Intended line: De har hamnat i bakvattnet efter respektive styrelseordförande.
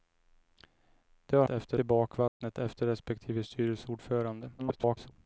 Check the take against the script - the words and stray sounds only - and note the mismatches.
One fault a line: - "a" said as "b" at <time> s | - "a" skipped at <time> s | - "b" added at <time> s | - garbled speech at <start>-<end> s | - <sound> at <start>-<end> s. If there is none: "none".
- "hamnat" said as "efter" at 1.5 s
- dropout at 2.3-2.4 s
- garbled speech at 4.6-5.1 s